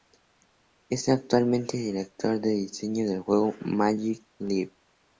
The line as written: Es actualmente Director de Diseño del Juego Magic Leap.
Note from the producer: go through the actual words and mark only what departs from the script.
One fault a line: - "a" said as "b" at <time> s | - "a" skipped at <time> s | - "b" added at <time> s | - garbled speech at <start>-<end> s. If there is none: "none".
none